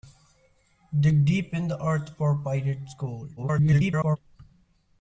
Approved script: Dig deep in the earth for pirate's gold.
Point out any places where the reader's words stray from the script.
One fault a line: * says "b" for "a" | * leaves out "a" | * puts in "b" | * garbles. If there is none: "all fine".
* garbles